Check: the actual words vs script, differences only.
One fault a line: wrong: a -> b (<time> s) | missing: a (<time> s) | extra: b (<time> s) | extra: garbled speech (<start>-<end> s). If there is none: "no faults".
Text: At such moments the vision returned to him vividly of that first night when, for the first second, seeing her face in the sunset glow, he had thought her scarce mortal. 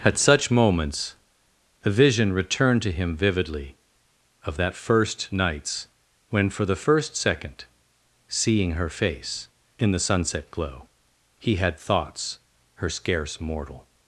wrong: night -> nights (5.3 s)
wrong: thought -> thoughts (11.8 s)